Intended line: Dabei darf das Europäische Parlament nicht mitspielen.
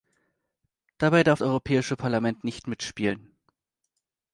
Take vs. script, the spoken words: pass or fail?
fail